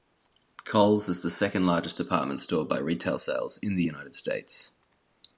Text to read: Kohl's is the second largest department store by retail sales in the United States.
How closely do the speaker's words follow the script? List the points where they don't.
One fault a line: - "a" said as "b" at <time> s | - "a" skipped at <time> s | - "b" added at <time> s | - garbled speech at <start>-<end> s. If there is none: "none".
none